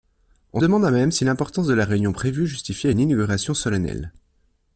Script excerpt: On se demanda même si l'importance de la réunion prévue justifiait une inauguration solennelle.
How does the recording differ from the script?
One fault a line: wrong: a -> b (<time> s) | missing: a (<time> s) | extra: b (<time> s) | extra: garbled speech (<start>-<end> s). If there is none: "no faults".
missing: se (0.6 s)